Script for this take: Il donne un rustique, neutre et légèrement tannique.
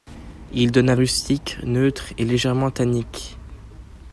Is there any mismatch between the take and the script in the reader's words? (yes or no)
no